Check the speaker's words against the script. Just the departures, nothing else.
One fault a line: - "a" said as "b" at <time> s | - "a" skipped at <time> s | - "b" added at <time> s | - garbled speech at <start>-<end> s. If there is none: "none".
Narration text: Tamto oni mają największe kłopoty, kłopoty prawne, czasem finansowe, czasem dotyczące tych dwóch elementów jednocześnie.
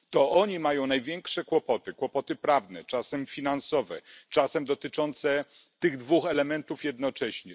- "Tamto" said as "To" at 0.1 s